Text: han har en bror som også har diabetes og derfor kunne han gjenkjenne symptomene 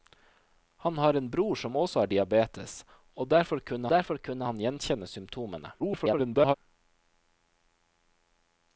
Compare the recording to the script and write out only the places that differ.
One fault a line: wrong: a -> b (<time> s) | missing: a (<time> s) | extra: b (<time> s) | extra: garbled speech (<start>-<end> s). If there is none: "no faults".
extra: derfor kunne (3.9 s)
extra: garbled speech (5.8-6.5 s)